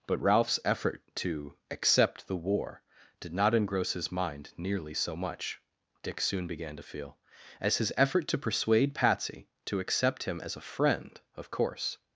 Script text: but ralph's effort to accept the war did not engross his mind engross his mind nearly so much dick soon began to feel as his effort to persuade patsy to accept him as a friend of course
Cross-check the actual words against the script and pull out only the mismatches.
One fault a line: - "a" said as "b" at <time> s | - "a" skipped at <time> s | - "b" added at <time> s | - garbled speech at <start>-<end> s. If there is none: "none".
- "engross his mind" skipped at 4.5 s